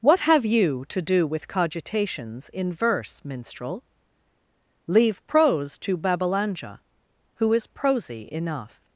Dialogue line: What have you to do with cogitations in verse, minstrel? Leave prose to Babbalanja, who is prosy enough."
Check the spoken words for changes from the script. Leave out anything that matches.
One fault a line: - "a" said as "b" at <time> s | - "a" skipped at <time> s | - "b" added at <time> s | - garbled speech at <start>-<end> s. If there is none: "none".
none